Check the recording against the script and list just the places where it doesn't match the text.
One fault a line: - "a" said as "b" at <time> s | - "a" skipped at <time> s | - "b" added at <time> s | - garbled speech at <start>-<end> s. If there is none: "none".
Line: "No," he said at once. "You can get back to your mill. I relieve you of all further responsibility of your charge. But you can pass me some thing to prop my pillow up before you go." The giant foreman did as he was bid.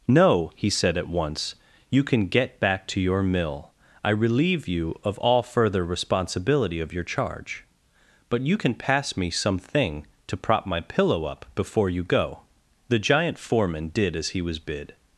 none